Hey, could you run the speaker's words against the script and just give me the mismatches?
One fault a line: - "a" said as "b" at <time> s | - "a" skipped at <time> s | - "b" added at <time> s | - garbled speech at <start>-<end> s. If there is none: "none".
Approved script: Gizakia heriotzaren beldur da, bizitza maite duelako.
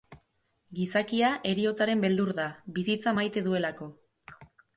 none